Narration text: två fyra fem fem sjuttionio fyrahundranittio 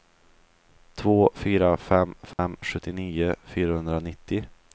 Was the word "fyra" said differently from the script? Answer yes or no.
no